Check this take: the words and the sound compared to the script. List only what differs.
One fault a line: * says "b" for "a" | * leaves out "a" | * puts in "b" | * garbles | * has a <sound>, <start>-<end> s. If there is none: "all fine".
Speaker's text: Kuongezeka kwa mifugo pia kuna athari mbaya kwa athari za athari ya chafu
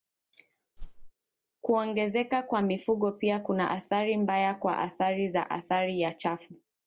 * has a whoosh, 0.8-1.1 s